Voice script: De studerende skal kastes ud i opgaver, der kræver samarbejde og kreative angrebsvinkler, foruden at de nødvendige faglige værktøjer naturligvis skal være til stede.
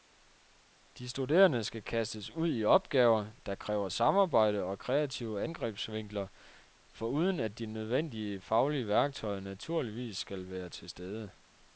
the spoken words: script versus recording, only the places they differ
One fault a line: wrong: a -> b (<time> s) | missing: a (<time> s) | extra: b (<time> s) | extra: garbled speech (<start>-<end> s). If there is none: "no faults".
no faults